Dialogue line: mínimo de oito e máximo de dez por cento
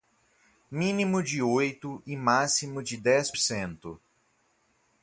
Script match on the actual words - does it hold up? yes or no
no